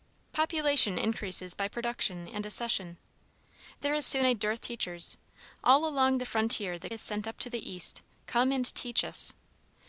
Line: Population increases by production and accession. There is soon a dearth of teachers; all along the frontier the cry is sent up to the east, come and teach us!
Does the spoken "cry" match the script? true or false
false